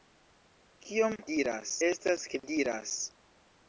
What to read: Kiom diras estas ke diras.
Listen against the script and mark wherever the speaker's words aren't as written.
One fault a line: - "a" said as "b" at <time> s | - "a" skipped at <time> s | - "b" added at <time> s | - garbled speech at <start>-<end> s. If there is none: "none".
none